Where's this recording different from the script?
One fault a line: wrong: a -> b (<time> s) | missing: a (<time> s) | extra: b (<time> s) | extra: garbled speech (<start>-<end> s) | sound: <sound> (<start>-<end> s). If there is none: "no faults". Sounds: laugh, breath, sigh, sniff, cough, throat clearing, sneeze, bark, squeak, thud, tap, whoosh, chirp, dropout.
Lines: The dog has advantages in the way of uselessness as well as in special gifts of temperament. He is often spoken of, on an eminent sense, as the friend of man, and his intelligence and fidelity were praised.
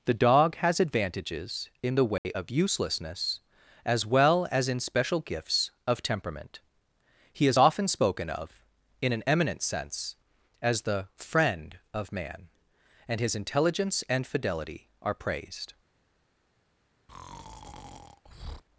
sound: dropout (2.2-2.2 s)
wrong: on -> in (9.0 s)
wrong: were -> are (15.0 s)
sound: breath (17.1-18.6 s)